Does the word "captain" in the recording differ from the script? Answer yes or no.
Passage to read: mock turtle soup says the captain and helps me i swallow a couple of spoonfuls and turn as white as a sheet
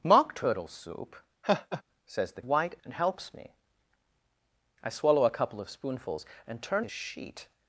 yes